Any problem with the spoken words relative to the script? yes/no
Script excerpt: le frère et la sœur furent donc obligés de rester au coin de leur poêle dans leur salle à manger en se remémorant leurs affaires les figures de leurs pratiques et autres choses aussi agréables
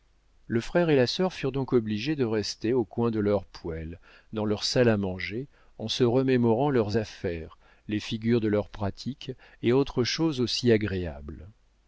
no